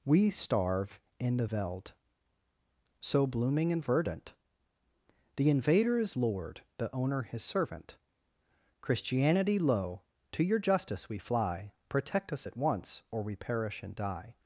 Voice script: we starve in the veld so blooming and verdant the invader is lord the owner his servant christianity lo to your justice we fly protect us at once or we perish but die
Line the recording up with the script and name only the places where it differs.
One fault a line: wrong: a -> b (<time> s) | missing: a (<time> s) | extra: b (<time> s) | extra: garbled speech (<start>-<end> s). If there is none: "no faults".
wrong: but -> and (13.8 s)